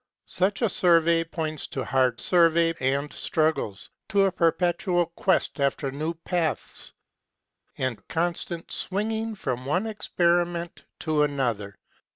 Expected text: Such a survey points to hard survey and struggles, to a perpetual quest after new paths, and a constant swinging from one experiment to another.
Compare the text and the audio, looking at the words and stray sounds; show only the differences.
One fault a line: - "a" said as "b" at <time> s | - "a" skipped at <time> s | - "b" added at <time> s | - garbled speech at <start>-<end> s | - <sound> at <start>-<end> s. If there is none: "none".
none